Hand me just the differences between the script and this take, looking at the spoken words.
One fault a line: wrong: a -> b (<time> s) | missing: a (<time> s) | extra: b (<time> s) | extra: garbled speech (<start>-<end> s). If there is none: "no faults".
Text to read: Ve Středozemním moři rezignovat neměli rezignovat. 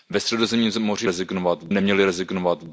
no faults